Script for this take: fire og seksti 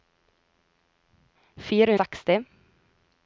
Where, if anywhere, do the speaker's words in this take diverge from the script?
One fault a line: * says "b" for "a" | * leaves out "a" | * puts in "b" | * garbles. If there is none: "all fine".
all fine